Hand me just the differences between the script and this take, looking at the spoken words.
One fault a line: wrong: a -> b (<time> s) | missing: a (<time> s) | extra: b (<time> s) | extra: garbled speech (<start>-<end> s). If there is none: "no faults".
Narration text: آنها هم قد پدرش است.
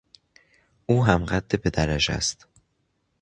wrong: آنها -> او (0.8 s)